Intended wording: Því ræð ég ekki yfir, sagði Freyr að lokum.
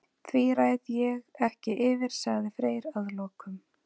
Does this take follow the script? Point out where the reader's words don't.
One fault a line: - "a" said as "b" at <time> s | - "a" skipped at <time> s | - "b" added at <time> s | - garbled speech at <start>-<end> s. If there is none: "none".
none